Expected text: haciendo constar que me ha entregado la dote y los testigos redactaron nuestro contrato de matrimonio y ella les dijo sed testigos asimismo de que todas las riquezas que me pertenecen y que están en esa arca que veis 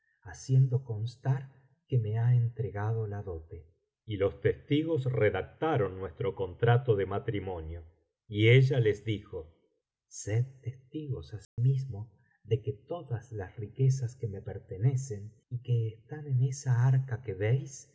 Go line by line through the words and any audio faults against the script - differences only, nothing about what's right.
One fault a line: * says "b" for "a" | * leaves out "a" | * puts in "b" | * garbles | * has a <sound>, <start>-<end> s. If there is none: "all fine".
* has a dropout, 11.4-11.6 s